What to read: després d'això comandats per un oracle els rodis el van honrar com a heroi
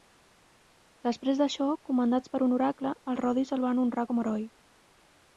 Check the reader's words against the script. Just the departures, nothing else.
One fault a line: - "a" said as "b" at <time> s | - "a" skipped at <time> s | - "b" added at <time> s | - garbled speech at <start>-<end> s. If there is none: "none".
none